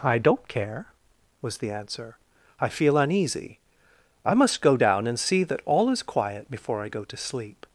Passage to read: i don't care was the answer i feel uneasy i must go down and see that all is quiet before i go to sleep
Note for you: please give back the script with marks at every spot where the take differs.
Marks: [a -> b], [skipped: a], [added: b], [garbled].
i don't care was the answer i feel uneasy i must go down and see that all is quiet before i go to sleep